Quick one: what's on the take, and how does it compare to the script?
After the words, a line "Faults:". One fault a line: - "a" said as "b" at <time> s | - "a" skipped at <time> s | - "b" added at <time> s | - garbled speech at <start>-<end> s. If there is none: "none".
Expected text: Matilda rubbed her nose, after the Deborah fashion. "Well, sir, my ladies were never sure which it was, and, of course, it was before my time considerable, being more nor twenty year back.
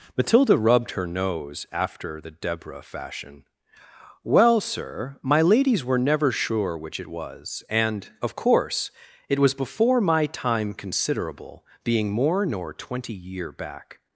Matilda rubbed her nose, after the Deborah fashion. "Well, sir, my ladies were never sure which it was, and, of course, it was before my time considerable, being more nor twenty year back.
Faults:
none